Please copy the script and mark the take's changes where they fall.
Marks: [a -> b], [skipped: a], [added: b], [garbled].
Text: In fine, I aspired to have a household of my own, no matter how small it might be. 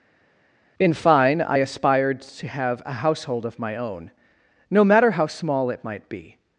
In fine, I aspired to have a household of my own, no matter how small it might be.